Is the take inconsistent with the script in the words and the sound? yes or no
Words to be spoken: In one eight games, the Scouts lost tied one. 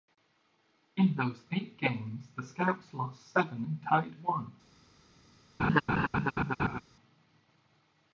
yes